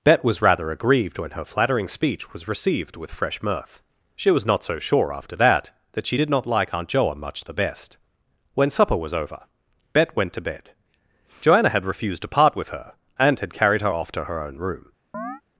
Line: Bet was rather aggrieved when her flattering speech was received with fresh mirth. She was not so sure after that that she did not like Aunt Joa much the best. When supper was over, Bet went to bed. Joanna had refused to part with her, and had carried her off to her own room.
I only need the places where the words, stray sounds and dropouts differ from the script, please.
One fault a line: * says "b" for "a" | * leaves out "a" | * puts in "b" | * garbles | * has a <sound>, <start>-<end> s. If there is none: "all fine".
* has a chirp, 15.1-15.4 s